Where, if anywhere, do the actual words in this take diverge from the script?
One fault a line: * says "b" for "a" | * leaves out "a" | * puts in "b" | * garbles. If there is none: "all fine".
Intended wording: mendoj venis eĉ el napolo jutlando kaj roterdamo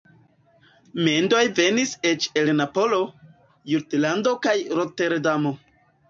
all fine